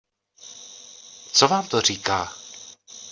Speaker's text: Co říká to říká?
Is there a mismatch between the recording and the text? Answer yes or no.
yes